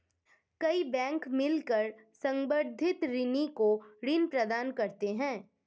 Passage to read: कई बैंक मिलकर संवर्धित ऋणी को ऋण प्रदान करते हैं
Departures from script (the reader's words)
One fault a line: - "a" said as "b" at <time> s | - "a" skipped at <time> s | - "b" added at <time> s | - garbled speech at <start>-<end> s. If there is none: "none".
none